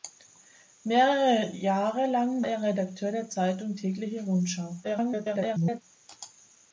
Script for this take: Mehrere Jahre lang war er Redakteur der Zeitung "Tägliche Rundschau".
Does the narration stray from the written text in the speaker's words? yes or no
yes